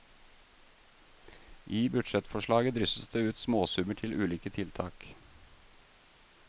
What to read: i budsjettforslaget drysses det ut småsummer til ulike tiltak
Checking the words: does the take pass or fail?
pass